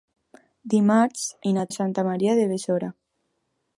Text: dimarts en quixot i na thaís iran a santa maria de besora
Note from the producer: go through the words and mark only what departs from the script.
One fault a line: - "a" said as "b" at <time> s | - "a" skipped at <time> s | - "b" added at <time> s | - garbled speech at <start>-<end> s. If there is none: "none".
- "en quixot" skipped at 1.2 s
- "thaís iran" skipped at 1.6 s